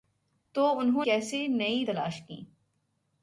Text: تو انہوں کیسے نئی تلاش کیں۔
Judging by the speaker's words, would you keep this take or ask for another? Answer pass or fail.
pass